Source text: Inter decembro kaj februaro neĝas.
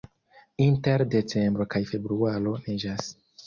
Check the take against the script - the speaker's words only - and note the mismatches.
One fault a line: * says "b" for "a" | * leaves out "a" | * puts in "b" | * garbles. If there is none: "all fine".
all fine